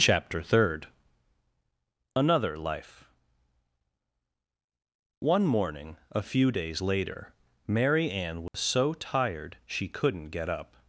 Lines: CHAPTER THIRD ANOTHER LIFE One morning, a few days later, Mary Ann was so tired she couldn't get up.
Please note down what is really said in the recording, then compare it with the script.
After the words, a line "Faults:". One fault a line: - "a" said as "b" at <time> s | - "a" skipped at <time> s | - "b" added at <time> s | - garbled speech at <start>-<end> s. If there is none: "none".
CHAPTER THIRD ANOTHER LIFE One morning, a few days later, Mary Ann was so tired she couldn't get up.
Faults:
none